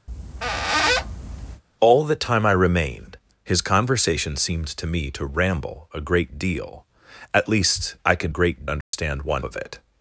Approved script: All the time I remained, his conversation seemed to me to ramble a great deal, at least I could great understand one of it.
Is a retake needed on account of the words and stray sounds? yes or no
yes